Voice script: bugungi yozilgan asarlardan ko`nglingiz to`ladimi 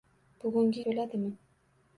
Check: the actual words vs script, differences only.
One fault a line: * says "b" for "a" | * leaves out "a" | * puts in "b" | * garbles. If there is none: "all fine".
* leaves out "yozilgan asarlardan ko`nglingiz"